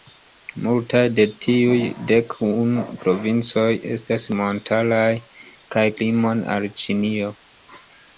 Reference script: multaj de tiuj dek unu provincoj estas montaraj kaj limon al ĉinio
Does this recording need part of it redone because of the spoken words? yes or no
no